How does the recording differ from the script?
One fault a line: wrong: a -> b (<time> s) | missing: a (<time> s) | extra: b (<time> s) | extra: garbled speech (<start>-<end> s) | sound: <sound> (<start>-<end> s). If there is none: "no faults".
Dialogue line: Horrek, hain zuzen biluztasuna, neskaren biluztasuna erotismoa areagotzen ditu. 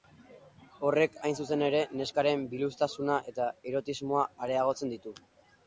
wrong: biluztasuna -> ere (1.7 s)
extra: eta (3.3 s)